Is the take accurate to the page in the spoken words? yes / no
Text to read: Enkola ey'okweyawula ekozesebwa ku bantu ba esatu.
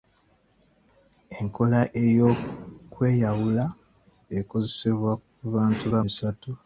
yes